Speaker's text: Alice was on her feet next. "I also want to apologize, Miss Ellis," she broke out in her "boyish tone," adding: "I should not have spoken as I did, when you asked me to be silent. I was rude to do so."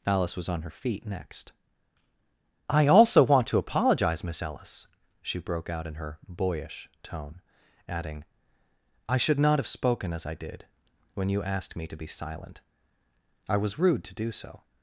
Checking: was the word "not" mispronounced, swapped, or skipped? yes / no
no